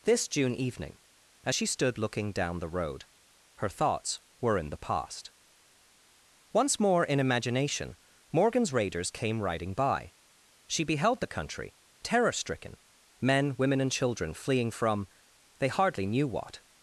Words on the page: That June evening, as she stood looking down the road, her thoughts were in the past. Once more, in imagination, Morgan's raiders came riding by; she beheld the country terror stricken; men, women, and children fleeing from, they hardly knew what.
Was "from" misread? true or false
false